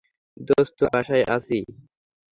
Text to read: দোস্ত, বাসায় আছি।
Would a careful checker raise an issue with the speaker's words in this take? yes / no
no